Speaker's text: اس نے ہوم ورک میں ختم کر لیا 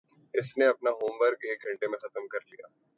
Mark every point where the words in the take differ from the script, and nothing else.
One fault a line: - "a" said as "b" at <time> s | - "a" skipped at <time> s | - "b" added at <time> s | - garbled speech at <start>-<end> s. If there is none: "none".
- "اپنا" added at 0.7 s
- "ایک گھنٹے" added at 1.4 s